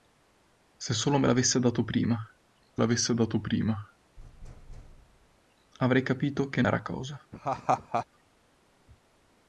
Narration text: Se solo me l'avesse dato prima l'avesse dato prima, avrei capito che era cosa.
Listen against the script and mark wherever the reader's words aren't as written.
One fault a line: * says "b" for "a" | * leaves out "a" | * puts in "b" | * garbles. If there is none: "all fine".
all fine